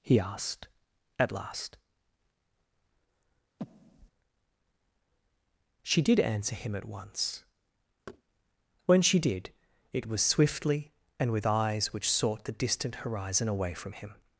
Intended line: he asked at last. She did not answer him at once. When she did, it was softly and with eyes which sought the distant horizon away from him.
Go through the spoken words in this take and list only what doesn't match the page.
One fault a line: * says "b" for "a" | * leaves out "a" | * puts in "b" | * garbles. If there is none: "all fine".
* leaves out "not"
* says "swiftly" for "softly"